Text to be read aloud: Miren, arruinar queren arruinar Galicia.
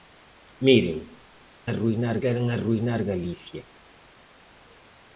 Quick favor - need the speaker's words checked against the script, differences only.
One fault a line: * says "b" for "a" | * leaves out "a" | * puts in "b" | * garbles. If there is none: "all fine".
all fine